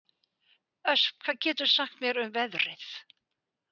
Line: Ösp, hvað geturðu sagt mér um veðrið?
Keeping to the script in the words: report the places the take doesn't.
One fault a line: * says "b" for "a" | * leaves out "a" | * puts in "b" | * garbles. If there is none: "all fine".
all fine